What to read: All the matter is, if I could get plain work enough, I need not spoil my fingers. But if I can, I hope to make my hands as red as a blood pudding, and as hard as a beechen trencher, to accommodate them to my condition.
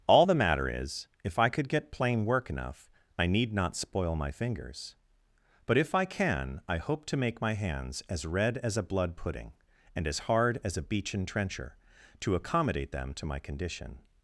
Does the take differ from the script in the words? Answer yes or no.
no